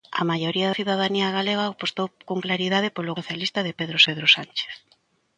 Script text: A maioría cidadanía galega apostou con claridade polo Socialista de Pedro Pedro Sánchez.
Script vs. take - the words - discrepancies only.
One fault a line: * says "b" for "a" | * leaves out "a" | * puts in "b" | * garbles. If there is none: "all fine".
all fine